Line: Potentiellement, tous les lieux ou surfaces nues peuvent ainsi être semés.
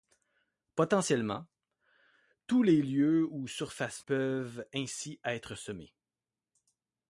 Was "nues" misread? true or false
true